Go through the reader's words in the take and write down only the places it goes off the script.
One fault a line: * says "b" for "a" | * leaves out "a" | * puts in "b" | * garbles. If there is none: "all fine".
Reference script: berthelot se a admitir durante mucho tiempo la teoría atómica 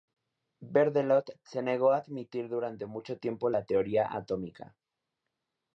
* puts in "negó"